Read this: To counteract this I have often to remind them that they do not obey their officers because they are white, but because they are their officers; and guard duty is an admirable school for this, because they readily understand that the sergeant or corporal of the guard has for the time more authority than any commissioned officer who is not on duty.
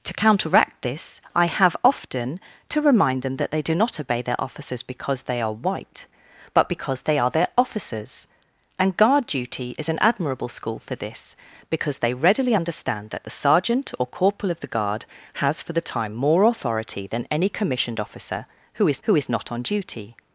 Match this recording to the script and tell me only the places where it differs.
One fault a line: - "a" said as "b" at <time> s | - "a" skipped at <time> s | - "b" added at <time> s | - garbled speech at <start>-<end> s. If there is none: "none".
- "who is" added at 19.0 s